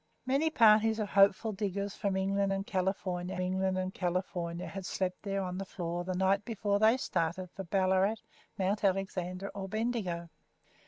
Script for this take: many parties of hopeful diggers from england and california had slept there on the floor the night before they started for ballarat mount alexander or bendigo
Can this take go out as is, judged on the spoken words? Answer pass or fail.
fail